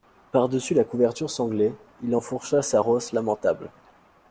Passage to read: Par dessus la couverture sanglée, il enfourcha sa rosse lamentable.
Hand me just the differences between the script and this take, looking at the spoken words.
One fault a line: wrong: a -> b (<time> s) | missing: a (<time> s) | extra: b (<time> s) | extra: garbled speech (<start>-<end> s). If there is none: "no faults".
no faults